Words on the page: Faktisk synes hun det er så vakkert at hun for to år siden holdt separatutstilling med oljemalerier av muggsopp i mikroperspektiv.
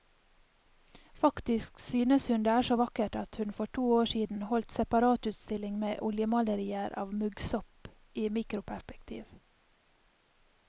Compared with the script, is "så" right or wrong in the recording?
right